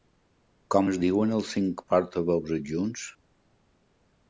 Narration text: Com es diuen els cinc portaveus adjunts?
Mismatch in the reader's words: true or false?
false